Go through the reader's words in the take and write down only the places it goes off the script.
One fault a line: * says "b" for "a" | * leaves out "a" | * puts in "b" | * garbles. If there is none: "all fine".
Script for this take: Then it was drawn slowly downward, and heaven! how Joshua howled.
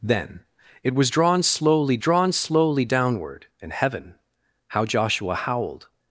* puts in "drawn slowly"